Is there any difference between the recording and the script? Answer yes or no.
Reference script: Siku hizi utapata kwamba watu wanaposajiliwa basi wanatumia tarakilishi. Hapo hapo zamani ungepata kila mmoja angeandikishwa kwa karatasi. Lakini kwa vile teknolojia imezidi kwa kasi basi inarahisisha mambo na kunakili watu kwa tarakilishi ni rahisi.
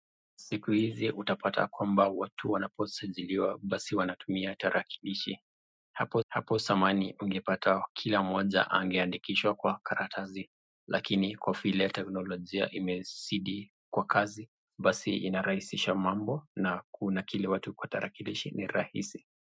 no